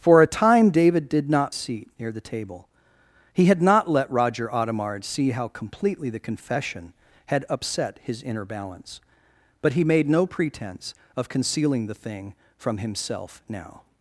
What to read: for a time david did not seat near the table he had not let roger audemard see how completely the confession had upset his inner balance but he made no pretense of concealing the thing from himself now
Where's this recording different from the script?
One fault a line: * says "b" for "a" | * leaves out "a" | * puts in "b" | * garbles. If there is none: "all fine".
all fine